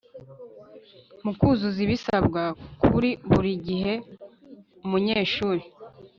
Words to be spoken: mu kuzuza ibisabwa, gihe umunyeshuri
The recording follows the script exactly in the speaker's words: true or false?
false